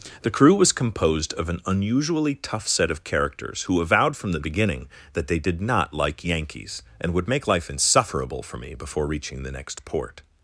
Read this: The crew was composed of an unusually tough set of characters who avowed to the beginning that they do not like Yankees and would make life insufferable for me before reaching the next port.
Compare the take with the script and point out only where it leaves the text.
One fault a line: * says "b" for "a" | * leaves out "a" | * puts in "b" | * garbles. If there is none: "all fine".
* says "from" for "to"
* says "did" for "do"